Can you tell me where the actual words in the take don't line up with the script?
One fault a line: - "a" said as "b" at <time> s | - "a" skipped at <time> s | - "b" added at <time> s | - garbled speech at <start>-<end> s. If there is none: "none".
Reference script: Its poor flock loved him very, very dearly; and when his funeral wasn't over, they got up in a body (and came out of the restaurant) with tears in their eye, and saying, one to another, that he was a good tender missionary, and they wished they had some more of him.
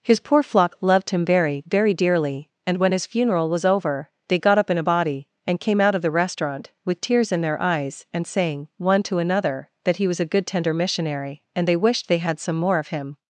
- "Its" said as "His" at 0.0 s
- "wasn't" said as "was" at 3.5 s
- "eye" said as "eyes" at 7.6 s